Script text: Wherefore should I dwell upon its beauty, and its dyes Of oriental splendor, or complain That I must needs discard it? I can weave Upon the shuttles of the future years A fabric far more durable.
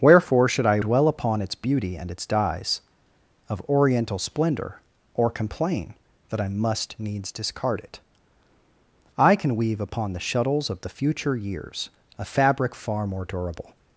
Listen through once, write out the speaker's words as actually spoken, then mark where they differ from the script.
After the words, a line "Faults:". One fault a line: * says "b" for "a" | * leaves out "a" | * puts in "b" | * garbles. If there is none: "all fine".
Wherefore should I dwell upon its beauty, and its dyes Of oriental splendor, or complain That I must needs discard it? I can weave Upon the shuttles of the future years A fabric far more durable.
Faults:
all fine